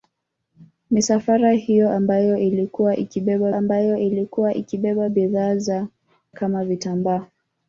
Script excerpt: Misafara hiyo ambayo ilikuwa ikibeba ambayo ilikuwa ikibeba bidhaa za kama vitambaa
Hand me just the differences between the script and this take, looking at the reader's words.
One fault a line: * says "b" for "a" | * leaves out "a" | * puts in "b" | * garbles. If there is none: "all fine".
all fine